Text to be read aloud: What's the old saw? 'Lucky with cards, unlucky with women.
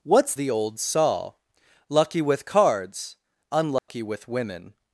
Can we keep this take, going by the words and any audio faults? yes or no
no